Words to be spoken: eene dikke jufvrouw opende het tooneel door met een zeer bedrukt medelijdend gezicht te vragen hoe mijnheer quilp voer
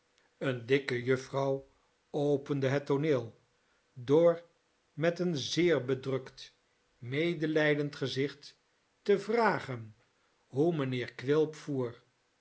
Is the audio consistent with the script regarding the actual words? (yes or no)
yes